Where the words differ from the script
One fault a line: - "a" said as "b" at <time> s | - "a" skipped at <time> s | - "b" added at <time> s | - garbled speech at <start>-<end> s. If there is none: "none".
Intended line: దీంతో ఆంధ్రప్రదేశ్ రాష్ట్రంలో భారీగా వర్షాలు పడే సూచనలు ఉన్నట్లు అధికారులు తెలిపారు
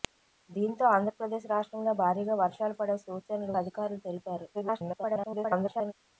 - "ఉన్నట్లు" skipped at 3.5 s
- garbled speech at 4.5-5.9 s